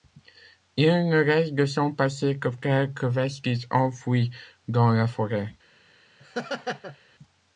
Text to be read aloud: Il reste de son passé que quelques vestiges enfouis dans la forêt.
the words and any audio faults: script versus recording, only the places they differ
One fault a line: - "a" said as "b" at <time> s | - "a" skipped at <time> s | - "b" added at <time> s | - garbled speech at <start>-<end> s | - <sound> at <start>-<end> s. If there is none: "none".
- "ne" added at 1.1 s
- laugh at 6.2-7.0 s